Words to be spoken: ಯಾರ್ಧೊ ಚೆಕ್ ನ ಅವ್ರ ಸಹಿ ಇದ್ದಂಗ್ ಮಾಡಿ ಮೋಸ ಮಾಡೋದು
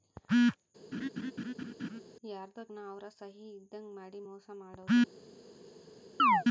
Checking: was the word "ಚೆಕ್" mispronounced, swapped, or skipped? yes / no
yes